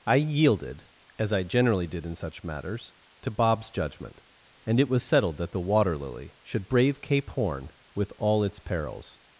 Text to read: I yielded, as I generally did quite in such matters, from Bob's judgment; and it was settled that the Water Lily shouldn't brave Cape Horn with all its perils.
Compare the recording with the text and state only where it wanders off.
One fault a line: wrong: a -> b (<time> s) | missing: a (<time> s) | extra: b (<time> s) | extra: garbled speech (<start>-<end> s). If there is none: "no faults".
missing: quite (2.0 s)
wrong: from -> to (3.2 s)
wrong: shouldn't -> should (6.4 s)